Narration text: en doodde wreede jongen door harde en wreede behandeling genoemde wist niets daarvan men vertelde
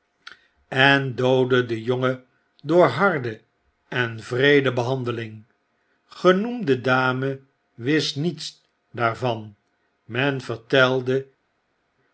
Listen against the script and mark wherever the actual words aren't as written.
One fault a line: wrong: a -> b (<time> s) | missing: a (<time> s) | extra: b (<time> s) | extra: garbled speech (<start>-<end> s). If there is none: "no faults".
wrong: wreede -> den (1.6 s)
extra: dame (6.8 s)